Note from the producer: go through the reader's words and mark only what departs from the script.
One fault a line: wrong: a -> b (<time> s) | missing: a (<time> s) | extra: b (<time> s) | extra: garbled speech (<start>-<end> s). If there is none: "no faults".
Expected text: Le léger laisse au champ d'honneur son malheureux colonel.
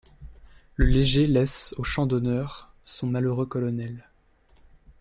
no faults